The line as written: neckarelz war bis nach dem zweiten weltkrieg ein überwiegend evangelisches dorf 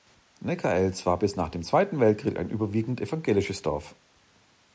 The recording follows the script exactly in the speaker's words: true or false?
true